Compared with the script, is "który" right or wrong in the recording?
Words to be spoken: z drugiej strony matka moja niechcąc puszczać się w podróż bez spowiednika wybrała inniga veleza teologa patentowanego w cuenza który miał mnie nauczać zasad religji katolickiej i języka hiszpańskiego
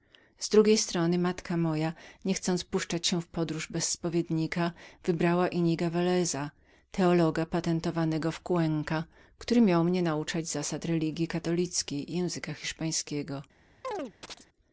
right